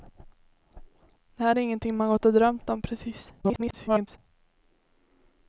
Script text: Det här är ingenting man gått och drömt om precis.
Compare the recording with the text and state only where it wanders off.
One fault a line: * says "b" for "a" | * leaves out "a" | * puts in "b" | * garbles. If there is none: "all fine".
* garbles